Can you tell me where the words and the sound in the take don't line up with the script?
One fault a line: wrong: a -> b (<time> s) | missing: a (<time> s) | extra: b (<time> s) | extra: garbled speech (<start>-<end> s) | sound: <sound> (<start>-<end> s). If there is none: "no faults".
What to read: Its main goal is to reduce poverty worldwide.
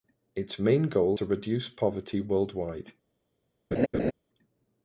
missing: is (1.2 s)
sound: laugh (3.7-4.1 s)